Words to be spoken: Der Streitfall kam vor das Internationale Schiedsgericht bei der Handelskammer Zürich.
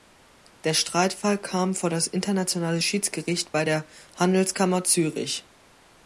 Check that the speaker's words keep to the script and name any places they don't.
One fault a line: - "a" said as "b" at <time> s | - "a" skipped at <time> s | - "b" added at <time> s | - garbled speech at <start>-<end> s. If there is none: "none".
none